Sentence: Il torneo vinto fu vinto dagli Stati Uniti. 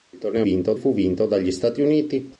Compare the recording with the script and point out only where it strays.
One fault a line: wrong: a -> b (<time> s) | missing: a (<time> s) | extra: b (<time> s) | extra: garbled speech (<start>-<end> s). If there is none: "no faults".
no faults